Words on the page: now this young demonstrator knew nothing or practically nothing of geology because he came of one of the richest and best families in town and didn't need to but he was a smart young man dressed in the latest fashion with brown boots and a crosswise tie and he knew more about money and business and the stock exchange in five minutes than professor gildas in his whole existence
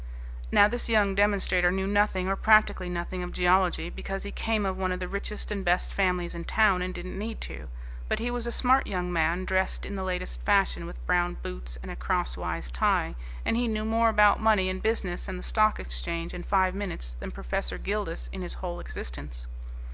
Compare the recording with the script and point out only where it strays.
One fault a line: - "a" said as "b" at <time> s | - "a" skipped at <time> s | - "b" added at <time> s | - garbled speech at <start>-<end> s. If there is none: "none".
none